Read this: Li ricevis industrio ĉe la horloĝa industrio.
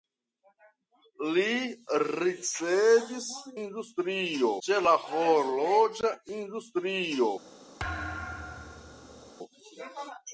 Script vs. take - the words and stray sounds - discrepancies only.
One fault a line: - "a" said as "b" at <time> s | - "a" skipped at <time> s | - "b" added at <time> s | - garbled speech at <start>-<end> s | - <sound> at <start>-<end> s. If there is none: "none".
- thud at 7.8-9.3 s